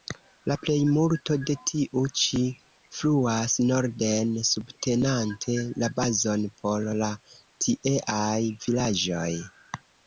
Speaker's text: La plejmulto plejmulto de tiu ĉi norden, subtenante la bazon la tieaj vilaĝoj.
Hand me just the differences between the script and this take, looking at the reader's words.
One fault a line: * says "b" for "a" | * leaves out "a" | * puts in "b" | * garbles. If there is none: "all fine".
* leaves out "plejmulto"
* puts in "fluas"
* puts in "por"